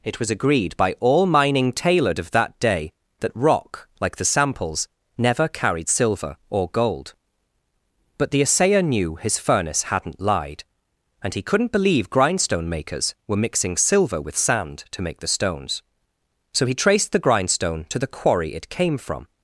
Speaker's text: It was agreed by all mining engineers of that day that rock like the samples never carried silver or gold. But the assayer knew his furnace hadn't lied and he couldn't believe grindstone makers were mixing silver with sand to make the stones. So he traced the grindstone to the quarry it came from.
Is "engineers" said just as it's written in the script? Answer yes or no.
no